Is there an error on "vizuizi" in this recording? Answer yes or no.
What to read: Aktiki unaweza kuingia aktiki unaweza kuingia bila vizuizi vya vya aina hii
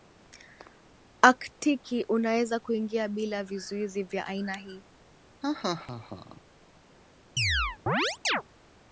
no